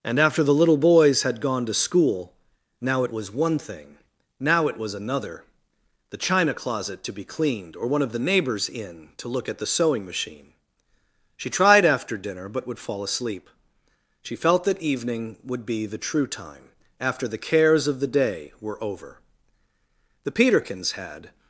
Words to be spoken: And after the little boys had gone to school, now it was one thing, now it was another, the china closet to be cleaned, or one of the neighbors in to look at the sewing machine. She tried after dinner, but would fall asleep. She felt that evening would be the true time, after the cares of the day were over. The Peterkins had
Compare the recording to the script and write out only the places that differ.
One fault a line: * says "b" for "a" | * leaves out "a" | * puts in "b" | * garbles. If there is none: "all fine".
all fine